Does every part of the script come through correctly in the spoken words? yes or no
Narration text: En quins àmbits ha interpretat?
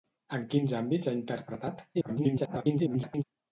no